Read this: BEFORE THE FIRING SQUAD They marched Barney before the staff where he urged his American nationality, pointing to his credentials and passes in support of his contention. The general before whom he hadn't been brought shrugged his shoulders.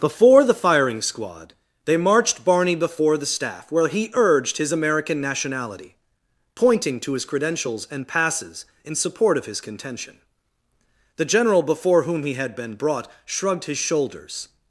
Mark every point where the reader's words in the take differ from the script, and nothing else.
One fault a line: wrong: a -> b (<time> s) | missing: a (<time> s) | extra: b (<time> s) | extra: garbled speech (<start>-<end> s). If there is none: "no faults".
wrong: hadn't -> had (12.3 s)